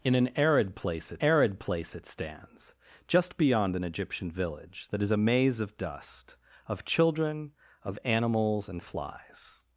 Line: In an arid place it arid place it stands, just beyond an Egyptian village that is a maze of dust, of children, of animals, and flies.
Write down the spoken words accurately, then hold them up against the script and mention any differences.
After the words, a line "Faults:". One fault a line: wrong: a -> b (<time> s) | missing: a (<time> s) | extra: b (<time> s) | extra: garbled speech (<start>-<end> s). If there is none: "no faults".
In an arid place it arid place it stands, just beyond an Egyptian village that is a maze of dust, of children, of animals, and flies.
Faults:
no faults